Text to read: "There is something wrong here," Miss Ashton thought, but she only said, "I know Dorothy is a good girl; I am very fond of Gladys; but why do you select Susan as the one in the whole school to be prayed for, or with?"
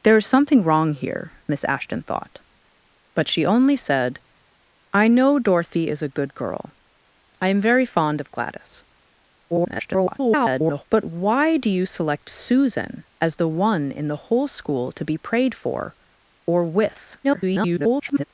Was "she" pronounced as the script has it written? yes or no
yes